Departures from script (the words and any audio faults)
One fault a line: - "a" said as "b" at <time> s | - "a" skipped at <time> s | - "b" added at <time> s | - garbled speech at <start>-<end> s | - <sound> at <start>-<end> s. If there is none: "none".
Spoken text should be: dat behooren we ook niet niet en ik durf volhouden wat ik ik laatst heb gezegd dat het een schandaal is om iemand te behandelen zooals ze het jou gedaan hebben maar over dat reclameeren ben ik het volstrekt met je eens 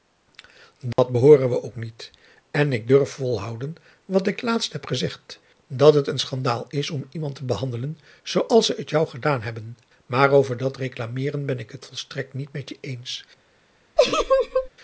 - dropout at 0.9-1.0 s
- "niet" skipped at 2.1 s
- "ik" skipped at 4.4 s
- "niet" added at 12.3 s
- laugh at 14.0-14.7 s